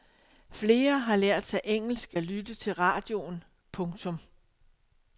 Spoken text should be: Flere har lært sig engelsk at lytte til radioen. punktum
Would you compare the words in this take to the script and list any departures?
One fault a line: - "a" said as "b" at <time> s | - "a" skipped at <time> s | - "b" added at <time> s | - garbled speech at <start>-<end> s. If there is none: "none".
none